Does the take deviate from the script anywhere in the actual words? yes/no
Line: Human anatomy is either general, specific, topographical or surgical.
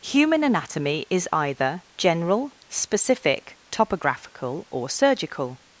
no